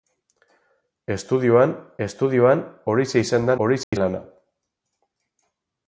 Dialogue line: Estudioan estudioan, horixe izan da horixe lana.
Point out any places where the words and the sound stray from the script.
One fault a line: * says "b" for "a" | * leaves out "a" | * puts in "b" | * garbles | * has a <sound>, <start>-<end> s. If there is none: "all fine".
* has a dropout, 3.8-3.9 s